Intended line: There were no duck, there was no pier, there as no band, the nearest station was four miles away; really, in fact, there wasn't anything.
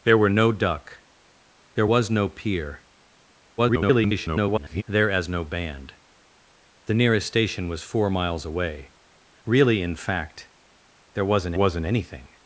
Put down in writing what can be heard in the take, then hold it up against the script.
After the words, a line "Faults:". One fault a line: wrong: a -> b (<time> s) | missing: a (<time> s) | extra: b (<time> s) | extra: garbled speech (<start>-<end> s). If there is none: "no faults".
There were no duck, there was no pier, [garbled] there as no band, the nearest station was four miles away; really, in fact, there wasn't wasn't anything.
Faults:
extra: garbled speech (3.6-4.8 s)
extra: wasn't (11.5 s)